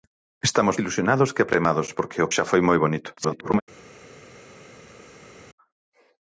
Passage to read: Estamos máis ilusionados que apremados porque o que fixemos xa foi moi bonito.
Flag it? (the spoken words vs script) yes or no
yes